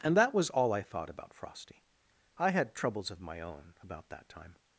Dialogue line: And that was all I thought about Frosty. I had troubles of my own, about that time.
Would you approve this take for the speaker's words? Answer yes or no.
yes